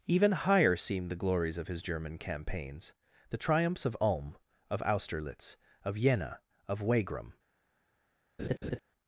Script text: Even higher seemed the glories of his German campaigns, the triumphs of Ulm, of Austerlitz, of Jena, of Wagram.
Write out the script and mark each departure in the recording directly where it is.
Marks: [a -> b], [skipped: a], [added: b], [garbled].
Even higher seemed the glories of his German campaigns, the triumphs of Ulm, of Austerlitz, of Jena, of Wagram.